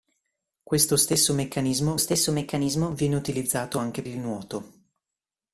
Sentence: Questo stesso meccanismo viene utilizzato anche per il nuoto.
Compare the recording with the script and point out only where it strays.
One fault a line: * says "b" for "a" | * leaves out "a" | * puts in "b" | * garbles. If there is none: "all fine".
* puts in "stesso meccanismo"
* leaves out "per"